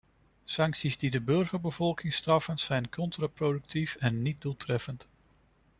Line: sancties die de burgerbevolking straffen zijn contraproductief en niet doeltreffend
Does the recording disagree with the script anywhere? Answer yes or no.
no